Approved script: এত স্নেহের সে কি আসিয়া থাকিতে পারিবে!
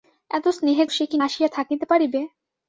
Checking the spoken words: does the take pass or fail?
pass